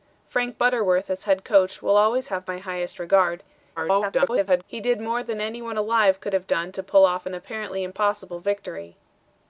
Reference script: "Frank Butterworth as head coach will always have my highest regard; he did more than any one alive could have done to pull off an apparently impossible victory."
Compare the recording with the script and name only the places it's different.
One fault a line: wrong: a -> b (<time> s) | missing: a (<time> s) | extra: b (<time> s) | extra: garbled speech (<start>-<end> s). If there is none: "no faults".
extra: garbled speech (3.8-4.6 s)